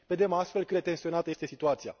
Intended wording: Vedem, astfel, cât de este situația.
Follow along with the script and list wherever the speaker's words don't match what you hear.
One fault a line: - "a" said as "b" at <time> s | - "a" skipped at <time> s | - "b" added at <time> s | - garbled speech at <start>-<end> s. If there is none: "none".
- "tensionată" added at 0.8 s